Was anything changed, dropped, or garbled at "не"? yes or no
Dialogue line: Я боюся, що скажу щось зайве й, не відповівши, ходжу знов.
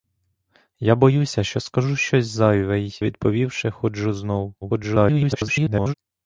yes